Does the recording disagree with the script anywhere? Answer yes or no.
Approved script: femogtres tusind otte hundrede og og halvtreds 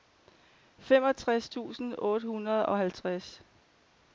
yes